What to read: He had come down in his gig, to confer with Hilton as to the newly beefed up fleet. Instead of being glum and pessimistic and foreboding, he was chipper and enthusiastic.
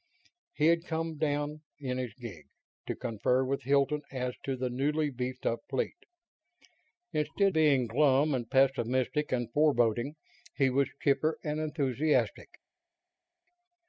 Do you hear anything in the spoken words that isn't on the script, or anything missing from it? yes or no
yes